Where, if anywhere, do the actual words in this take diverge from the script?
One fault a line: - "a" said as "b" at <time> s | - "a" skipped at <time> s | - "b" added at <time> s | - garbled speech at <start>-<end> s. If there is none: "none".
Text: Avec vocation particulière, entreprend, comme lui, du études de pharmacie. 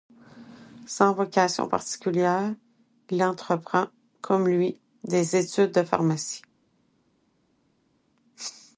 - "Avec" said as "Sans" at 0.9 s
- "il" added at 3.1 s
- "du" said as "des" at 5.0 s